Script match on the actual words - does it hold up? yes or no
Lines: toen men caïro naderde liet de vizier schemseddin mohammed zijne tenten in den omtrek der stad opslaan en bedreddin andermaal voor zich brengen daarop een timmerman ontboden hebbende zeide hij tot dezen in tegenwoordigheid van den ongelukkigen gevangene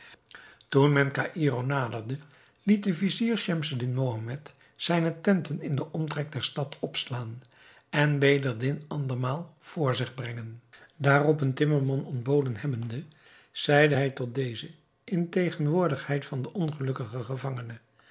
yes